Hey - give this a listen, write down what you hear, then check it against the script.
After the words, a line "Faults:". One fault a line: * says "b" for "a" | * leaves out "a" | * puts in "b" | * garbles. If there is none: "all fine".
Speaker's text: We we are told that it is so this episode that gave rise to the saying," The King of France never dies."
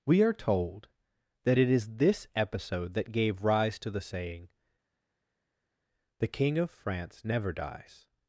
We are told that it is this episode that gave rise to the saying," The King of France never dies."
Faults:
* leaves out "we"
* leaves out "so"